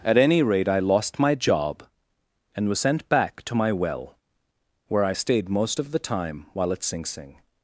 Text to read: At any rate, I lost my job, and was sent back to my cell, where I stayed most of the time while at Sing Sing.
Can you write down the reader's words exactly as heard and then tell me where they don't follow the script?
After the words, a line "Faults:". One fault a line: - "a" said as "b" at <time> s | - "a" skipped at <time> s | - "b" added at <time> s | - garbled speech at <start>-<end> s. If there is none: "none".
At any rate, I lost my job, and was sent back to my well, where I stayed most of the time while at Sing Sing.
Faults:
- "cell" said as "well" at 3.7 s